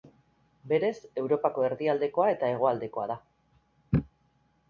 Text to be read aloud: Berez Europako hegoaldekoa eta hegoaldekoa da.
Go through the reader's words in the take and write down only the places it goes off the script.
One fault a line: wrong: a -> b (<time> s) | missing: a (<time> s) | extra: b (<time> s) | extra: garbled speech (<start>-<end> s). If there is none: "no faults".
wrong: hegoaldekoa -> erdialdekoa (1.7 s)